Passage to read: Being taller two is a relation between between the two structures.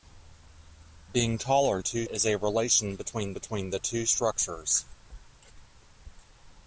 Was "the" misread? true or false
false